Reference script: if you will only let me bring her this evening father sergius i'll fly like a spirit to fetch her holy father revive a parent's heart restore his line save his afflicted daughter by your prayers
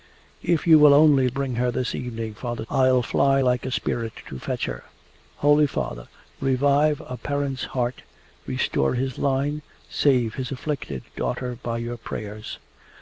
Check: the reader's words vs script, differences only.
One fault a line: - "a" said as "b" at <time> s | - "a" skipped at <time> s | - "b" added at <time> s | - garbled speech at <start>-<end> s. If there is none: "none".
- "let me" skipped at 1.3 s
- "sergius" skipped at 2.7 s